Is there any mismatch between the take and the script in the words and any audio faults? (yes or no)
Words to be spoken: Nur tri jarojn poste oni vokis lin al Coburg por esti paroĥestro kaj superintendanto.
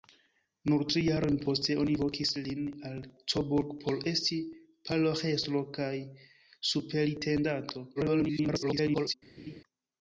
yes